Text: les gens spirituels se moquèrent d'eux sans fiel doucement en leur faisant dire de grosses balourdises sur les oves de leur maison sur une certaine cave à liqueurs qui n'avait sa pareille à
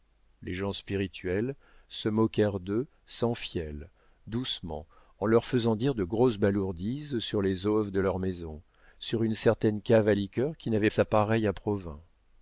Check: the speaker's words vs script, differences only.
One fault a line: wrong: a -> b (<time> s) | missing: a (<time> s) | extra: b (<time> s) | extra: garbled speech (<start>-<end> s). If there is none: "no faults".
no faults